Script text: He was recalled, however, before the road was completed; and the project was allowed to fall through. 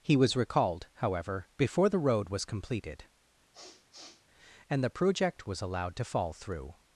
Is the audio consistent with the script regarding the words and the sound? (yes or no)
no